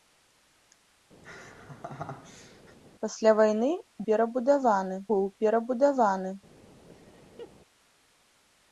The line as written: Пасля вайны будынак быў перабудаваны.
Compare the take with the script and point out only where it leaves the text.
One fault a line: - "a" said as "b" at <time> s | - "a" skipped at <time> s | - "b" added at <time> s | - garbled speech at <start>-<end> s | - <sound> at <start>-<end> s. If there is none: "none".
- laugh at 1.2-2.8 s
- "будынак" said as "перабудаваны" at 4.1 s
- laugh at 6.9-7.5 s